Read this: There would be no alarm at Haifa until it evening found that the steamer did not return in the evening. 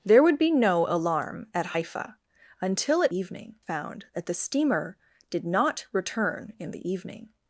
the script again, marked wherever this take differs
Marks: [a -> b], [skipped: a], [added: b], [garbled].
There would be no alarm at Haifa until it evening found that the steamer did not return in the evening.